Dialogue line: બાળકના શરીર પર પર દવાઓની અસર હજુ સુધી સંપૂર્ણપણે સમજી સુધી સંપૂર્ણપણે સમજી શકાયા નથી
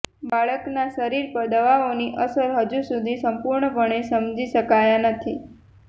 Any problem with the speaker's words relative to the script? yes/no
yes